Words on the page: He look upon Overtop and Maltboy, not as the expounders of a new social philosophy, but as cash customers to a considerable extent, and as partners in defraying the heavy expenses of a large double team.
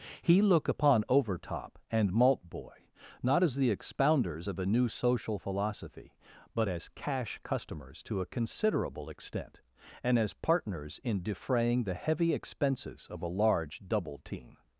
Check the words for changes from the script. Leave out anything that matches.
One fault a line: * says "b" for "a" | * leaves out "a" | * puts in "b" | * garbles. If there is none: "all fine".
all fine